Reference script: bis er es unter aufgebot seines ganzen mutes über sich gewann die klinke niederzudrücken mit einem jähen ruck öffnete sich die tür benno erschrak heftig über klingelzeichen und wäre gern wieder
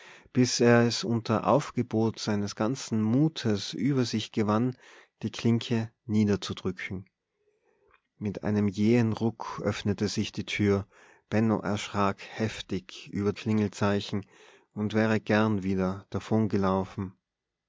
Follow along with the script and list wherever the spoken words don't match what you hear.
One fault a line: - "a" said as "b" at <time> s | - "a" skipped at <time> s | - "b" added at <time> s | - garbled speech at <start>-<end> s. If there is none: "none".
none